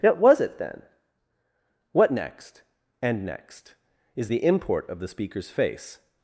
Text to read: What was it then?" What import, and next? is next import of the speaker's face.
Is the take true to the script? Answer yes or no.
no